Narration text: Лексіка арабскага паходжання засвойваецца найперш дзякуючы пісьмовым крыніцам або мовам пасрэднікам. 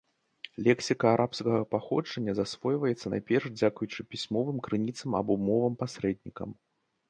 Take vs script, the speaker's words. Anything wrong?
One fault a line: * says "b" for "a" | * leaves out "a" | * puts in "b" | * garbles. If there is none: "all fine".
all fine